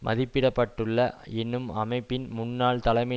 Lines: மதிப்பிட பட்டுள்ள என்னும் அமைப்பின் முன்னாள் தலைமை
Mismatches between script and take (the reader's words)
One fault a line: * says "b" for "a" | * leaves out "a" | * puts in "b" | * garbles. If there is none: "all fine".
all fine